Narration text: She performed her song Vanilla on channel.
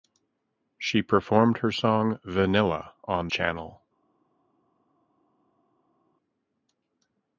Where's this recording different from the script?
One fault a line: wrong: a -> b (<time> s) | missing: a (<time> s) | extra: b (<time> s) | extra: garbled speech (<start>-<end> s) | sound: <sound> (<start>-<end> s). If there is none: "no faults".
no faults